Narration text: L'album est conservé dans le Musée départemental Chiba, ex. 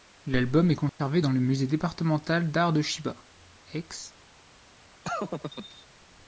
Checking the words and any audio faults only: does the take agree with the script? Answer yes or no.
no